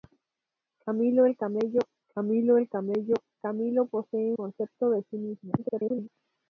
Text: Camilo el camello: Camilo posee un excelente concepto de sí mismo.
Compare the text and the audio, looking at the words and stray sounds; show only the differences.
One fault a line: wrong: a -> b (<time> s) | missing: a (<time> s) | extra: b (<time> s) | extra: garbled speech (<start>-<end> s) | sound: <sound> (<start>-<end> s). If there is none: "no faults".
wrong: posee un excelente -> el camello Camilo posee (2.6 s)
extra: garbled speech (5.6-6.1 s)